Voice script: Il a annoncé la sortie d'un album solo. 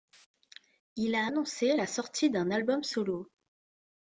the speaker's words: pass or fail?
pass